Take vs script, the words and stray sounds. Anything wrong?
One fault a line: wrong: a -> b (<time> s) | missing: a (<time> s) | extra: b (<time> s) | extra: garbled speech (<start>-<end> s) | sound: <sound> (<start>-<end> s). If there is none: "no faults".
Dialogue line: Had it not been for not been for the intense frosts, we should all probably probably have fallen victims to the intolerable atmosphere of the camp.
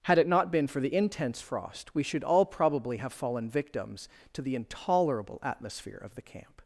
missing: not been for (0.8 s)
wrong: frosts -> frost (1.4 s)
missing: probably (3.0 s)